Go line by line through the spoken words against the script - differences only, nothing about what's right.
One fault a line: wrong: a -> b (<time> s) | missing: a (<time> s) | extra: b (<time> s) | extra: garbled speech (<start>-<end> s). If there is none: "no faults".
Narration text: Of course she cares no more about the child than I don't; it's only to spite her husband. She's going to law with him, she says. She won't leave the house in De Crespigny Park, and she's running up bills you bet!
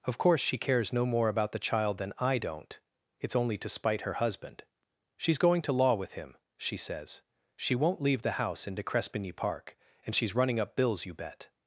no faults